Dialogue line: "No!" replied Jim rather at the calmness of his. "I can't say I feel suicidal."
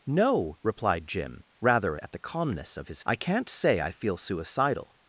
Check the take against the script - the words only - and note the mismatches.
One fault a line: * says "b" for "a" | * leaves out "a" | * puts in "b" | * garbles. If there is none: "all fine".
all fine